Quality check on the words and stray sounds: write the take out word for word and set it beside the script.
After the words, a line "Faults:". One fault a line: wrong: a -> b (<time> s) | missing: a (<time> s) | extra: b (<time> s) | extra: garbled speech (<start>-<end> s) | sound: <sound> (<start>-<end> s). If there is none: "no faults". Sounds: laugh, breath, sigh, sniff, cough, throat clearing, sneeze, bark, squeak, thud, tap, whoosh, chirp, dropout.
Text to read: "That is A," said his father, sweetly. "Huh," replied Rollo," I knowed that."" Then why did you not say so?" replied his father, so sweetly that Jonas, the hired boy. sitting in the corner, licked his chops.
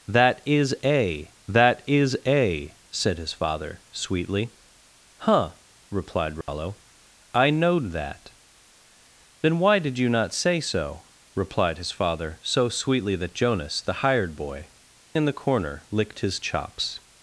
"That is A that is A," said his father, sweetly. "Huh," replied Rollo," I knowed that."" Then why did you not say so?" replied his father, so sweetly that Jonas, the hired boy. in the corner, licked his chops.
Faults:
extra: that is A (1.5 s)
sound: dropout (6.4-6.5 s)
missing: sitting (14.7 s)